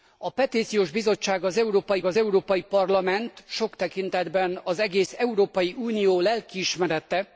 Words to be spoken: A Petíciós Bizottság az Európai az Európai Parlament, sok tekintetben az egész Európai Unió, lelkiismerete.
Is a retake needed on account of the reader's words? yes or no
no